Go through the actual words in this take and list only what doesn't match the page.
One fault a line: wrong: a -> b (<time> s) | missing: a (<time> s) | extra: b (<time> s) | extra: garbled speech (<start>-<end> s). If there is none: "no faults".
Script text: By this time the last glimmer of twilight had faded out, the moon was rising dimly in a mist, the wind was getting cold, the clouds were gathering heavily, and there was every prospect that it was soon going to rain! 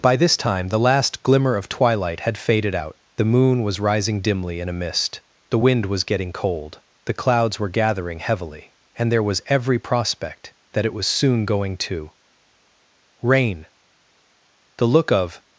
extra: The look of (14.8 s)